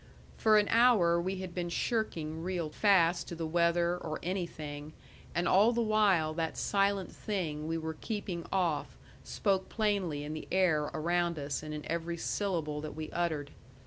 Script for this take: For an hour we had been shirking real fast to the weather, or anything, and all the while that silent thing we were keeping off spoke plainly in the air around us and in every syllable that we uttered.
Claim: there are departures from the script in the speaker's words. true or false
false